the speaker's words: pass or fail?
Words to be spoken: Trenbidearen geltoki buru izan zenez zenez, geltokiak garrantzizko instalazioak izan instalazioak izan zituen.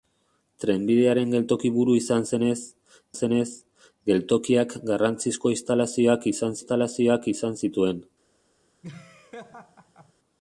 pass